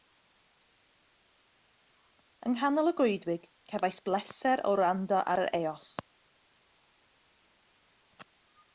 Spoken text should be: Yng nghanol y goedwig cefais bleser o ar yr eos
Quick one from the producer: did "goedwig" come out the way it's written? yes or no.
yes